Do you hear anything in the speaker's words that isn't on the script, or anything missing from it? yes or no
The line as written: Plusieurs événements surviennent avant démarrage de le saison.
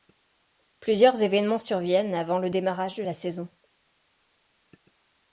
yes